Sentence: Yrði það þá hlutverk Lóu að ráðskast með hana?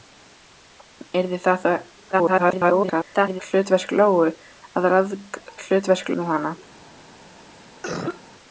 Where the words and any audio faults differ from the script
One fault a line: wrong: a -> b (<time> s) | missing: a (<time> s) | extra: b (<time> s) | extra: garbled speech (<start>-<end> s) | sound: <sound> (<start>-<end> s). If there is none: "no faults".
extra: garbled speech (2.1-3.4 s)
wrong: ráðskast -> hlutverk (5.6 s)
sound: cough (7.8-8.2 s)